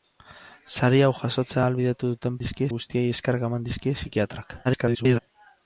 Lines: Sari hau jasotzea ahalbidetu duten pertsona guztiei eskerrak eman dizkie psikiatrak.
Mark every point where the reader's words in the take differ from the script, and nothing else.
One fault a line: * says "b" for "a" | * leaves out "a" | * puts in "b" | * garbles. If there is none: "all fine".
* says "dizkie" for "pertsona"
* garbles